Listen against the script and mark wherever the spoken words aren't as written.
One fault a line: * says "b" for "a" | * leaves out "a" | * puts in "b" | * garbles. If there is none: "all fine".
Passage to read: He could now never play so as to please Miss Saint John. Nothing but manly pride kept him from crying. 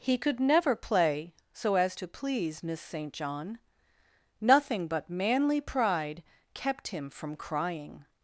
* leaves out "now"